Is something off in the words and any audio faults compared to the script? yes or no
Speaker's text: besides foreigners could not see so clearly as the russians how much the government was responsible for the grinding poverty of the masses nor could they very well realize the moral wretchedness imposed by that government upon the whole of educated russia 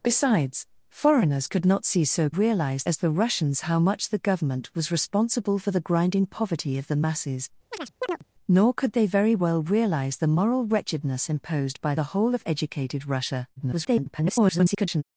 yes